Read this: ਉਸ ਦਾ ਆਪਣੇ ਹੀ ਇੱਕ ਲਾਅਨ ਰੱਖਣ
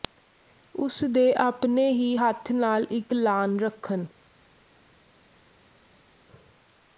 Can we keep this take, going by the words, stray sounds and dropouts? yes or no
no